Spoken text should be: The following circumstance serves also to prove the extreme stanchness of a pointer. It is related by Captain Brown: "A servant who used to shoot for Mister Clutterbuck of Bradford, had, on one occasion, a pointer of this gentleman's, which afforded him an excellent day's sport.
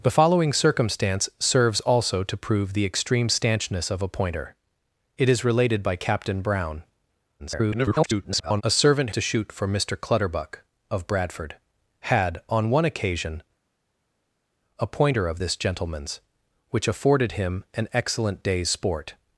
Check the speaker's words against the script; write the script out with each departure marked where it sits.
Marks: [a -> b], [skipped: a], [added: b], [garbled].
The following circumstance serves also to prove the extreme stanchness of a pointer. It is related by Captain Brown: [garbled] "A servant [skipped: who used] to shoot for Mister Clutterbuck of Bradford, had, on one occasion, a pointer of this gentleman's, which afforded him an excellent day's sport.